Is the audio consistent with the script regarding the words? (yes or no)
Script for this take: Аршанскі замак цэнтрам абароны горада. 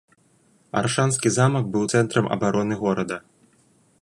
no